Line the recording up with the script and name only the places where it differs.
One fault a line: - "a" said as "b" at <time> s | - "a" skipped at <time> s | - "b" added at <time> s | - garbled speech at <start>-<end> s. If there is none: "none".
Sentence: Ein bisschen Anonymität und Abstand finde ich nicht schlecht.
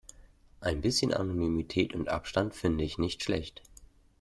none